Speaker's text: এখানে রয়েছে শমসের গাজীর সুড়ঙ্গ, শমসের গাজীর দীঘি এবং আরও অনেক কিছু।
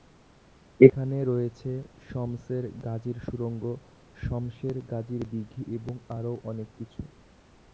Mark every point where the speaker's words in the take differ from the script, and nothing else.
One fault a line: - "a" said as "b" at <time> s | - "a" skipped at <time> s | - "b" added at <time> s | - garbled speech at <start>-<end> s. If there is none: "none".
none